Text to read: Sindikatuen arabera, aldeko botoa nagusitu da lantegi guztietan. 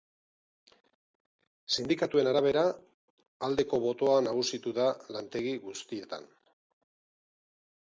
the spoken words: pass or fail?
pass